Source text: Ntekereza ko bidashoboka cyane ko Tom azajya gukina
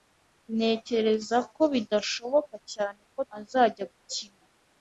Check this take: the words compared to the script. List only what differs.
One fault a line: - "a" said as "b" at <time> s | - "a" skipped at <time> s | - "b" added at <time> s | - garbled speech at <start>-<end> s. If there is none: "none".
- "Tom" skipped at 3.2 s